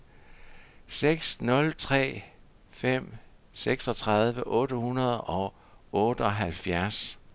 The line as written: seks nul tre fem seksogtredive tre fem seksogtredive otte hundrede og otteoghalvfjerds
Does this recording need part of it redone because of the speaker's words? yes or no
yes